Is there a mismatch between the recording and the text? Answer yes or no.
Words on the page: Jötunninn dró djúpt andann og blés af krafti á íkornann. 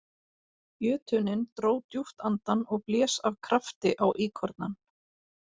no